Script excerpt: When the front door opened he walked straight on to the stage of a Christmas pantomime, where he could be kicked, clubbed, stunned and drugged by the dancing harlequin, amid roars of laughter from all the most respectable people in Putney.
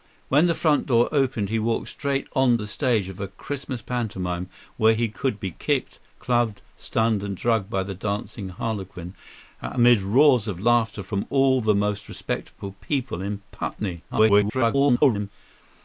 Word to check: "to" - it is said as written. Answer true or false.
false